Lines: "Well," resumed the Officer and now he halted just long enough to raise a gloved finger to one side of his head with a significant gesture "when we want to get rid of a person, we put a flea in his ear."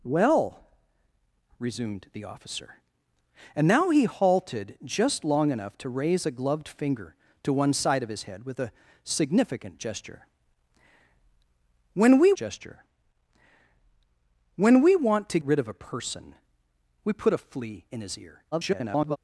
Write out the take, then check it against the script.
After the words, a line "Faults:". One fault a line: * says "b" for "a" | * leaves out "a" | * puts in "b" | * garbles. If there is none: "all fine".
"Well," resumed the Officer and now he halted just long enough to raise a gloved finger to one side of his head with a significant gesture "when we gesture when we want to rid of a person, we put a flea in his ear." [garbled]
Faults:
* puts in "gesture when we"
* leaves out "get"
* garbles